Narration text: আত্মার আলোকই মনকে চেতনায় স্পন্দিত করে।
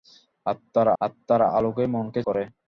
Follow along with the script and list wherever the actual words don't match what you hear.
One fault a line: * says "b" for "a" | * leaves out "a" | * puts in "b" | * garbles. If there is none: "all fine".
* puts in "আত্মার"
* leaves out "চেতনায় স্পন্দিত"